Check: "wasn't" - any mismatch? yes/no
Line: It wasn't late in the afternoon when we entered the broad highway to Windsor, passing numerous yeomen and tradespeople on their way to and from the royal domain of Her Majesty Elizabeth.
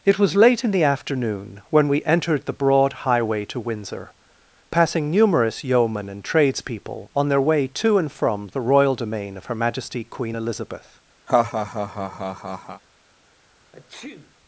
yes